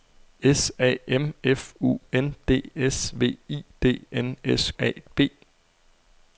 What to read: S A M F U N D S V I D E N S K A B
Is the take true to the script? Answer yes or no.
no